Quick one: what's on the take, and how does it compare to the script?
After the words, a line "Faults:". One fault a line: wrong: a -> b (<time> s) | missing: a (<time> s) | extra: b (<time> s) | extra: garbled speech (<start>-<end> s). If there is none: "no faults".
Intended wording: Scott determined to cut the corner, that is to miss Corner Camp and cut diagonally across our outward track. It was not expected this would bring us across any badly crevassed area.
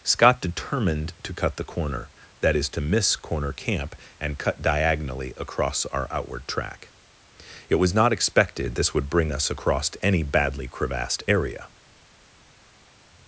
Scott determined to cut the corner, that is to miss Corner Camp and cut diagonally across our outward track. It was not expected this would bring us across any badly crevassed area.
Faults:
no faults